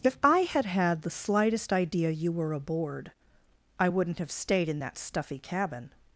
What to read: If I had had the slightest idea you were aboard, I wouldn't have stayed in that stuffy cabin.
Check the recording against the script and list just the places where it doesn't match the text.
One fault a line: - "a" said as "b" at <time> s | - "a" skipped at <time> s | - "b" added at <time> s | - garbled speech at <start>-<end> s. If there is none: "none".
none